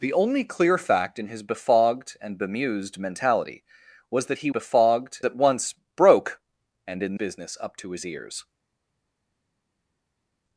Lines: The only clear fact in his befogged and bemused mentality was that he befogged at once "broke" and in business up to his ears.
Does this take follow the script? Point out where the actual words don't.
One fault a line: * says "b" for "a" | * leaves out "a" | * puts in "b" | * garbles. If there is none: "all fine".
all fine